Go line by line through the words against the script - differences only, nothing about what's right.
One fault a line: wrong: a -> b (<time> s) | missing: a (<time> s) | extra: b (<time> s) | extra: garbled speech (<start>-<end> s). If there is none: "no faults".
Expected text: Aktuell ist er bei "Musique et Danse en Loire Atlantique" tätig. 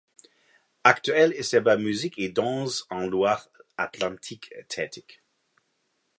no faults